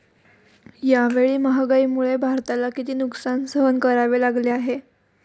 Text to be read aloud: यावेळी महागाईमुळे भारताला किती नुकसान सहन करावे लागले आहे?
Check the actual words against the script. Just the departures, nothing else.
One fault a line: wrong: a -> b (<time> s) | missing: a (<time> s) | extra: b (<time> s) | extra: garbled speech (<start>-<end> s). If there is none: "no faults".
no faults